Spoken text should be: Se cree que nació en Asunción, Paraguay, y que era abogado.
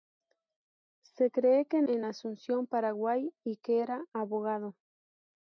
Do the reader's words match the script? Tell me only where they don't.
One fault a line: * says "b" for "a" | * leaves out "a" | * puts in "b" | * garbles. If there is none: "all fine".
* leaves out "nació"